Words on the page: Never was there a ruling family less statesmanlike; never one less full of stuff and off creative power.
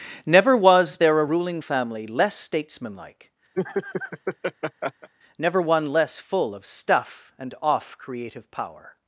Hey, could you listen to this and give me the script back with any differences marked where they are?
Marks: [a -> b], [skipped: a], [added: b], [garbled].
Never was there a ruling family less statesmanlike; never one less full of stuff and off creative power.